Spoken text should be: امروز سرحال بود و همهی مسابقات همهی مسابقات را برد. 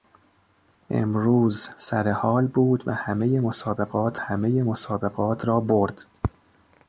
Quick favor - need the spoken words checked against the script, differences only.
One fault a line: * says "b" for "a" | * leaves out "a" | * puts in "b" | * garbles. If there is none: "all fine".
all fine